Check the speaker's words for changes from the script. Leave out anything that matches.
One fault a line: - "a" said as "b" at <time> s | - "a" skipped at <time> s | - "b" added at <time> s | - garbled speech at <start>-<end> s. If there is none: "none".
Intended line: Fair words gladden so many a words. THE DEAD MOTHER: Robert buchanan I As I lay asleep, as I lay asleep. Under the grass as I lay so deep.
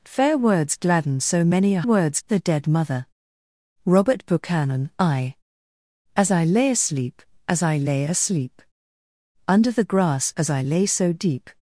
none